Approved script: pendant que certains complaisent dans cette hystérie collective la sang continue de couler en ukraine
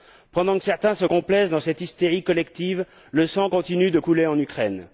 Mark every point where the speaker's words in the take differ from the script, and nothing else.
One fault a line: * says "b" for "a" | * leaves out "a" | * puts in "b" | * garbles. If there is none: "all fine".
* puts in "se"
* says "le" for "la"